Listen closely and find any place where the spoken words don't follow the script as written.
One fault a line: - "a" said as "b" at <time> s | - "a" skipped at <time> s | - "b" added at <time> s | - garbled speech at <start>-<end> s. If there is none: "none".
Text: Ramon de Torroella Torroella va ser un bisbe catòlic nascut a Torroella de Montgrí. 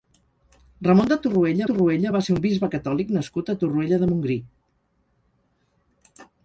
none